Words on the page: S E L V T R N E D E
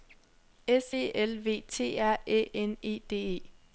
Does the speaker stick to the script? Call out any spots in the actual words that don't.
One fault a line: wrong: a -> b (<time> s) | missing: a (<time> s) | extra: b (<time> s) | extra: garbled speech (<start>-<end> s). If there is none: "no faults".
extra: Æ (2.2 s)